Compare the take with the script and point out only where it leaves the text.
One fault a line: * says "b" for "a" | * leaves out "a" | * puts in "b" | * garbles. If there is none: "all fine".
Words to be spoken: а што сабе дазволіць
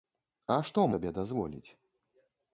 all fine